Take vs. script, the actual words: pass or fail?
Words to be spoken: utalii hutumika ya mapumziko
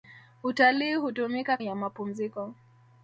pass